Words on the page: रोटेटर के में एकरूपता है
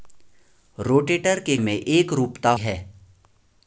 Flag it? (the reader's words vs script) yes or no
no